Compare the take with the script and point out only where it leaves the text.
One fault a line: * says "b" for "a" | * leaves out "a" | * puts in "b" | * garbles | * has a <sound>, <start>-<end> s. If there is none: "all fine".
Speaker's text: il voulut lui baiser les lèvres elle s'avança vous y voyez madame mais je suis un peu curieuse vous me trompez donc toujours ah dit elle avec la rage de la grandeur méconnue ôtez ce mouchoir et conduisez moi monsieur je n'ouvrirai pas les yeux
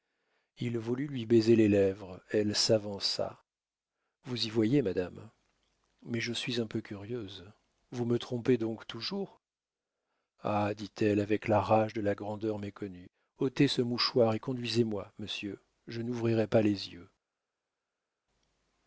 all fine